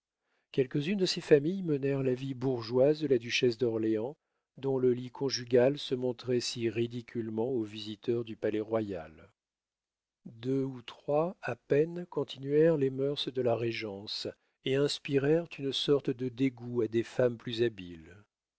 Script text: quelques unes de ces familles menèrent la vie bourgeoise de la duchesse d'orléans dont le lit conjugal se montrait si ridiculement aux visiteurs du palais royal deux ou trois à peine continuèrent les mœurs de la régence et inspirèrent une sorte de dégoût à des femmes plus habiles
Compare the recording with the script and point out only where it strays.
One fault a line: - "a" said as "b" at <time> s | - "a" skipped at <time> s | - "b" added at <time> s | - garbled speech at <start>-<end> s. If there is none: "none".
none